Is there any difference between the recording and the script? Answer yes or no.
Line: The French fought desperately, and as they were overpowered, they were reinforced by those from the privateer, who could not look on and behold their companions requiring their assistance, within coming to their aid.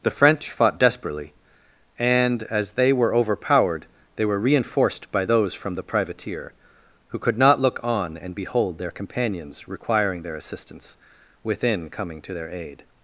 no